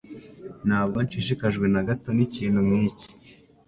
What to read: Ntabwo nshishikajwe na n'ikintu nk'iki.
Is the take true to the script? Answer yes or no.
no